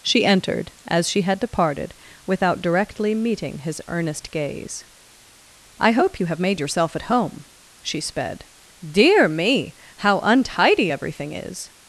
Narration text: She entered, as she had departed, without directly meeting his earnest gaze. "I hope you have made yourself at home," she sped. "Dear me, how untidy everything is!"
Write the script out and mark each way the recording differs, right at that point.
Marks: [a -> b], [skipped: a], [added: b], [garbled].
She entered, as she had departed, without directly meeting his earnest gaze. "I hope you have made yourself at home," she sped. "Dear me, how untidy everything is!"